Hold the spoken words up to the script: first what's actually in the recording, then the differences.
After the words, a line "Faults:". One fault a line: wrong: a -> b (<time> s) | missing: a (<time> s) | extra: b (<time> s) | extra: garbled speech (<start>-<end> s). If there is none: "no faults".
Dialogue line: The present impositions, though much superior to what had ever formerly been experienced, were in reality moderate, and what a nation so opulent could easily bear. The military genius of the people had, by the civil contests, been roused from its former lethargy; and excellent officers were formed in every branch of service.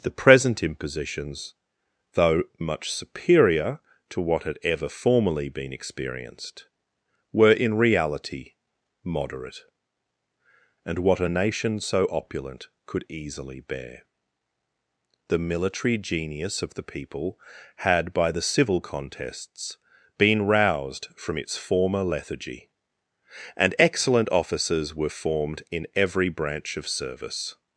The present impositions, though much superior to what had ever formerly been experienced, were in reality moderate, and what a nation so opulent could easily bear. The military genius of the people had, by the civil contests, been roused from its former lethargy; and excellent officers were formed in every branch of service.
Faults:
no faults